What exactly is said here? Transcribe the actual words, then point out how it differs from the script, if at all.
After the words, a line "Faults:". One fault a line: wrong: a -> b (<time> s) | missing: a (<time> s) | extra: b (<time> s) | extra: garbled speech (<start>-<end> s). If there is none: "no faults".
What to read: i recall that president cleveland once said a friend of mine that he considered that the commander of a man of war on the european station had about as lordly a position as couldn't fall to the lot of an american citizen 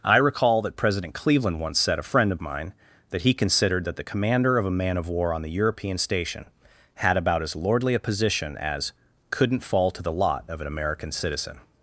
i recall that president cleveland once said a friend of mine that he considered that the commander of a man of war on the european station had about as lordly a position as couldn't fall to the lot of an american citizen
Faults:
no faults